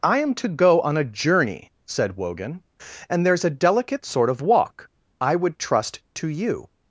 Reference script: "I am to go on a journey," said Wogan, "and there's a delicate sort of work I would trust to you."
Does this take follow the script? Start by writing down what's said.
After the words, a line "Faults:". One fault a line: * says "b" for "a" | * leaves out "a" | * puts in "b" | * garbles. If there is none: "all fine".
"I am to go on a journey," said Wogan, "and there's a delicate sort of walk I would trust to you."
Faults:
* says "walk" for "work"